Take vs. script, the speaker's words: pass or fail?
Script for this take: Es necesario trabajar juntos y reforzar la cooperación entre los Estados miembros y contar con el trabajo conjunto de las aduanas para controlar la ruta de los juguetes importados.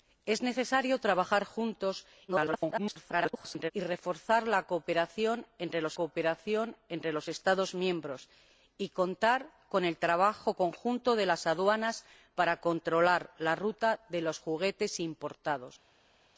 fail